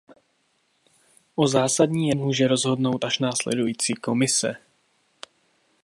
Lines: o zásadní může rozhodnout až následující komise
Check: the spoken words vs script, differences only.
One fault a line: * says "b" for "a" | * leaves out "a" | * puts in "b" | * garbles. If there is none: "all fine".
all fine